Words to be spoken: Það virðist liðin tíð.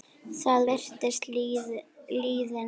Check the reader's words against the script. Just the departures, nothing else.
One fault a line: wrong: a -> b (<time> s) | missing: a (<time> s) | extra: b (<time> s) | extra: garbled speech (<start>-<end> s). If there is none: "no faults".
no faults